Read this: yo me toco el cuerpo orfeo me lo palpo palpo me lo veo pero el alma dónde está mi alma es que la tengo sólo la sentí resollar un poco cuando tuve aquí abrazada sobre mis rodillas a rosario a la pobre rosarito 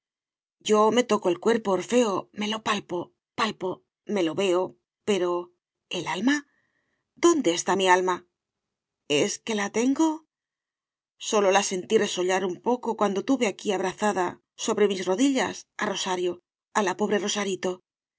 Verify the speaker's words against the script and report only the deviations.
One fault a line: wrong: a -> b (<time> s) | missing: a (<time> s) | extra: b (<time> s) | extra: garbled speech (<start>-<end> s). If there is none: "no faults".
no faults